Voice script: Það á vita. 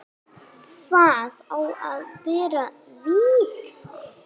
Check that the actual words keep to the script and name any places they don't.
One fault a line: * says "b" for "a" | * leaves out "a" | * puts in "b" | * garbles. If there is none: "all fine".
* puts in "að vera"